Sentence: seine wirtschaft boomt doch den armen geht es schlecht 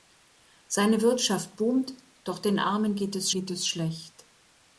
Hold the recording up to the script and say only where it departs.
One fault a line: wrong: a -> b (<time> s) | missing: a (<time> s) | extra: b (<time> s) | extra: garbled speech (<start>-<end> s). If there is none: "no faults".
extra: geht es (3.3 s)